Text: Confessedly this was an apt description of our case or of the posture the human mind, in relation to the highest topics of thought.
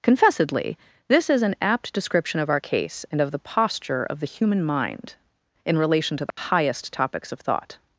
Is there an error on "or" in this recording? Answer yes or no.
yes